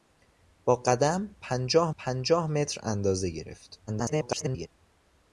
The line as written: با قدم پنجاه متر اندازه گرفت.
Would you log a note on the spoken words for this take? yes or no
yes